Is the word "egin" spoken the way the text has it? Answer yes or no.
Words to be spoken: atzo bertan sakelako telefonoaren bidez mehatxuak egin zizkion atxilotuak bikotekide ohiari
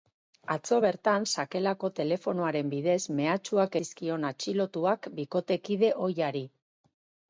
no